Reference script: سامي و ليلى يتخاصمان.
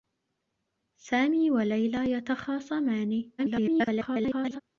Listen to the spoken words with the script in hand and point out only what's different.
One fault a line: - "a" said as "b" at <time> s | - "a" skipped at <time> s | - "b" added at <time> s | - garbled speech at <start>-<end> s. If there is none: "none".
- garbled speech at 3.4-4.6 s